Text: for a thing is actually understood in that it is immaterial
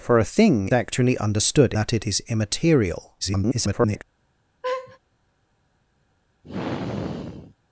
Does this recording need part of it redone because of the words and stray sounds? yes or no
yes